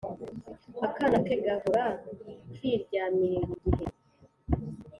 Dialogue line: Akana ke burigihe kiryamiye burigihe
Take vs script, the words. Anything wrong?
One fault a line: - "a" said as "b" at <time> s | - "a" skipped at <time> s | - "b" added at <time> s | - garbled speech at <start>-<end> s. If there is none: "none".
- "burigihe" said as "gahora" at 1.5 s